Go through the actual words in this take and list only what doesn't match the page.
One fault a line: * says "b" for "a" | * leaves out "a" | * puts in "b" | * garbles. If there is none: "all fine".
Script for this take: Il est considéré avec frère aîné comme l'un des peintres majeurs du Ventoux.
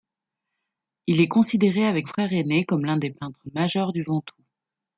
all fine